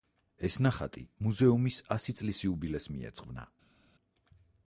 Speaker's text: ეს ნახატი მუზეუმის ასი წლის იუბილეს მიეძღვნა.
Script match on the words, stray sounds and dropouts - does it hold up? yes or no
yes